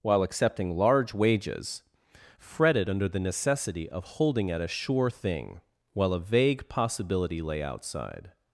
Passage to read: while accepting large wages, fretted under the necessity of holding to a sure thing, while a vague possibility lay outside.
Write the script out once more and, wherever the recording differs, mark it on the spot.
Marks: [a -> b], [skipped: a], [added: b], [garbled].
while accepting large wages, fretted under the necessity of holding [to -> at] a sure thing, while a vague possibility lay outside.